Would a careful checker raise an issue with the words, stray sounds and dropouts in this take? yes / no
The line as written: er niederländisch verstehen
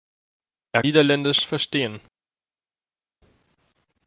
no